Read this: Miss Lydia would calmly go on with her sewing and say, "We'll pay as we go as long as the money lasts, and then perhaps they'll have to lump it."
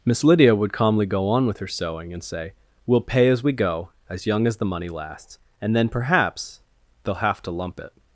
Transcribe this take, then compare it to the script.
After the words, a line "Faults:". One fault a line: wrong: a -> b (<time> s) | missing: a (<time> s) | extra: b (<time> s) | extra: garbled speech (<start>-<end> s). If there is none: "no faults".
Miss Lydia would calmly go on with her sewing and say, "We'll pay as we go as young as the money lasts, and then perhaps they'll have to lump it."
Faults:
wrong: long -> young (4.2 s)